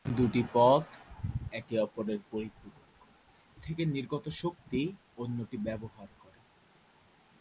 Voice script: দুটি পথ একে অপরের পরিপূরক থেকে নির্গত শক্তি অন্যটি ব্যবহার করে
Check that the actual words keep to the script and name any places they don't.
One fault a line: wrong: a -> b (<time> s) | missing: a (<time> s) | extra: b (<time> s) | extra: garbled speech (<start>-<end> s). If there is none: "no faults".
no faults